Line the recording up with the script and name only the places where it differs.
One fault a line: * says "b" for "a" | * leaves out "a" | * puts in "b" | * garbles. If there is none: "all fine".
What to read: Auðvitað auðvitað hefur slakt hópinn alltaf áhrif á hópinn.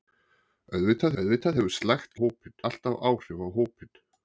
all fine